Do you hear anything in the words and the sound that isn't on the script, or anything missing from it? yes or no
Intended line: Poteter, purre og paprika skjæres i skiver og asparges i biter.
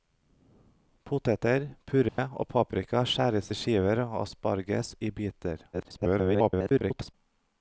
yes